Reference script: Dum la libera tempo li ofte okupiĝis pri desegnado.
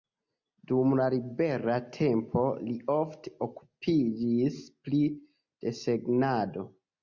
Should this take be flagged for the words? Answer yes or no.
no